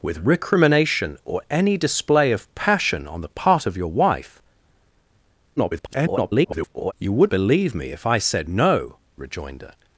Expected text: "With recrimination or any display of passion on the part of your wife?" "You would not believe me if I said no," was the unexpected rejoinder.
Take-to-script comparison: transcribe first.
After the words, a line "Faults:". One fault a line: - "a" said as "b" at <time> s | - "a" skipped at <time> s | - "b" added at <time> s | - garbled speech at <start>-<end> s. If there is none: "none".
"With recrimination or any display of passion on the part of your wife?" [garbled] "You would believe me if I said no," rejoinder.
Faults:
- garbled speech at 5.6-6.9 s
- "not" skipped at 7.3 s
- "was the unexpected" skipped at 9.0 s